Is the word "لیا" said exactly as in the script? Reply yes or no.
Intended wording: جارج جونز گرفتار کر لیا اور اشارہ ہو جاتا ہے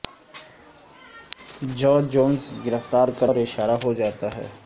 no